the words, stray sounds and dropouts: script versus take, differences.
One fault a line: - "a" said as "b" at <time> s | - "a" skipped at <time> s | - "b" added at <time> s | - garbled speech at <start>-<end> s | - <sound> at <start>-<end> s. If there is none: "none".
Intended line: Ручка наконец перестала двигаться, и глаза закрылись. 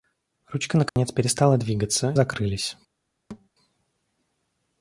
- dropout at 0.9-1.0 s
- "и глаза" skipped at 2.1 s
- thud at 3.3-3.5 s